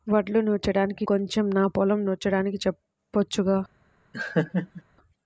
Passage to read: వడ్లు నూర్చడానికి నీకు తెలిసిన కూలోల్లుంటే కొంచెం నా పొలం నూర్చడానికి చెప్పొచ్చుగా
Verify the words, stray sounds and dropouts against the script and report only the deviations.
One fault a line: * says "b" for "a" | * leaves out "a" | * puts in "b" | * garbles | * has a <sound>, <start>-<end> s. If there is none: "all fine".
* leaves out "నీకు తెలిసిన కూలోల్లుంటే"
* has a laugh, 4.1-4.8 s